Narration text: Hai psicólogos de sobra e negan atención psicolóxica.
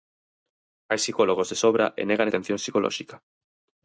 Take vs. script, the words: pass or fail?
pass